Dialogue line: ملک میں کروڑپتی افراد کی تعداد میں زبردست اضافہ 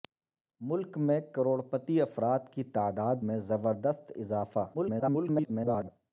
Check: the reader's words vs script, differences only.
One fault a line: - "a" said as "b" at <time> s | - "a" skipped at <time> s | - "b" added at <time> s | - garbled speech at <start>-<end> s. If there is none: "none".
- garbled speech at 4.7-5.9 s